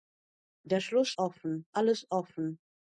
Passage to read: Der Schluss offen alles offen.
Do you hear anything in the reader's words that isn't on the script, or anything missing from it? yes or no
no